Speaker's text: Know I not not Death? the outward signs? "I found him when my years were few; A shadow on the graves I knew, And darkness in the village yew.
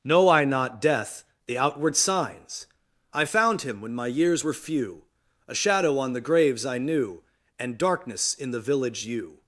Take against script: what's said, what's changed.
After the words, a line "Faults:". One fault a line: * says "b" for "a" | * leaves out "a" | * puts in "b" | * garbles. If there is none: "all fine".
Know I not Death? the outward signs? "I found him when my years were few; A shadow on the graves I knew, And darkness in the village yew.
Faults:
* leaves out "not"